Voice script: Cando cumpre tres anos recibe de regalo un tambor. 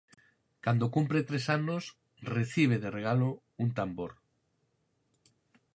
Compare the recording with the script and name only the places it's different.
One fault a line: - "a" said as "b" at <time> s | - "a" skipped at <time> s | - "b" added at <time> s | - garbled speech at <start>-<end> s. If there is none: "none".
none